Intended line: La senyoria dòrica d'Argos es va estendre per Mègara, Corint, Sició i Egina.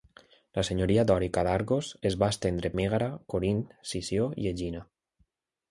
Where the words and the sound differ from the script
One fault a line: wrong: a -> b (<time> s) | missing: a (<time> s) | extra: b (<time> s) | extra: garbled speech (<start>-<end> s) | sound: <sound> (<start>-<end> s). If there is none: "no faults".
missing: per (2.7 s)